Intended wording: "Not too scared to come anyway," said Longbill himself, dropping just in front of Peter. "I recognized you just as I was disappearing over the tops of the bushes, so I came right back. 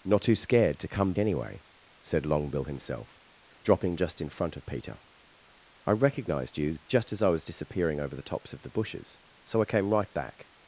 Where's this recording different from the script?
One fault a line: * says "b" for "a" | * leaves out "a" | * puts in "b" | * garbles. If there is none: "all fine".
all fine